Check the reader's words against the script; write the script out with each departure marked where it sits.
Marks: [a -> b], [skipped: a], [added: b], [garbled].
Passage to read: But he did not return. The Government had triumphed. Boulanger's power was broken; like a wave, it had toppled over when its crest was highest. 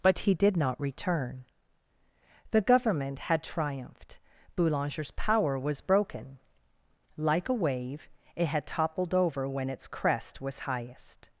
But he did not return. The Government had triumphed. Boulanger's power was broken; like a wave, it had toppled over when its crest was highest.